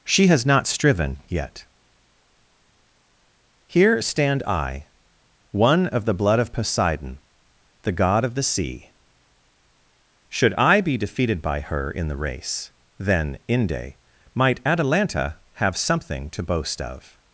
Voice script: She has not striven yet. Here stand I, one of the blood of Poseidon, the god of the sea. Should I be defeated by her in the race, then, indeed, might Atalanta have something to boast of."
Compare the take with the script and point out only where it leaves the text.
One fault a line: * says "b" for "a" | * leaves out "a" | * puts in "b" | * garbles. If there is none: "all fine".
* says "inde" for "indeed"